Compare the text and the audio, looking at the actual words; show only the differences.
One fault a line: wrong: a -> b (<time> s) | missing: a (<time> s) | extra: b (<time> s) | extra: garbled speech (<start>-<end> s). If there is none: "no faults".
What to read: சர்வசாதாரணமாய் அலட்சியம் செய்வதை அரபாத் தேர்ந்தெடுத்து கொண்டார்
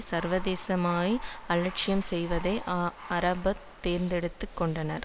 no faults